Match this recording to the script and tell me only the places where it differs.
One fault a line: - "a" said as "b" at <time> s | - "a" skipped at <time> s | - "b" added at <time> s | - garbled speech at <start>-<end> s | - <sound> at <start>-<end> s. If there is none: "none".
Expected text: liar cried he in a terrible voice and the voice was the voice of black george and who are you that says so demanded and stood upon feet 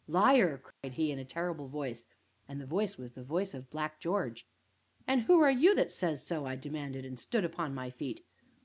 - dropout at 0.7-0.8 s
- "i" added at 6.4 s
- "my" added at 7.7 s